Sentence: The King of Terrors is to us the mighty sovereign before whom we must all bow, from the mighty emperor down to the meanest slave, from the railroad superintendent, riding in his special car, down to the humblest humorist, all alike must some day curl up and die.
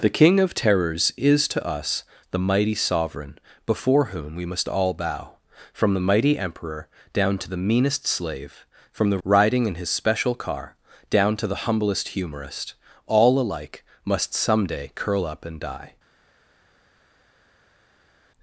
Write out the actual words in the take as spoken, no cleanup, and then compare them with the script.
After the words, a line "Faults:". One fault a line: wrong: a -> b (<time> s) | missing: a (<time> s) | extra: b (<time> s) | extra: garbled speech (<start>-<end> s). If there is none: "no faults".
The King of Terrors is to us the mighty sovereign before whom we must all bow, from the mighty emperor down to the meanest slave, from the riding in his special car, down to the humblest humorist, all alike must some day curl up and die.
Faults:
missing: railroad superintendent (9.2 s)